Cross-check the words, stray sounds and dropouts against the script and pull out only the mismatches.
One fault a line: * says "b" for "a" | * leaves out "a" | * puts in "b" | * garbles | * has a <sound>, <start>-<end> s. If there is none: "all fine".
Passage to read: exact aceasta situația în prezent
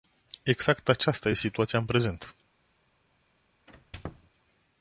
* has a squeak, 3.7-4.3 s